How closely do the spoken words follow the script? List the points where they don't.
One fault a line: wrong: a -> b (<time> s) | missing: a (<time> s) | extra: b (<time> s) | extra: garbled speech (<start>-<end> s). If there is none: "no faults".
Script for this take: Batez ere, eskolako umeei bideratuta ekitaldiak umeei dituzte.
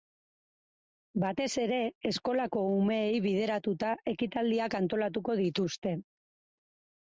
wrong: umeei -> antolatuko (4.8 s)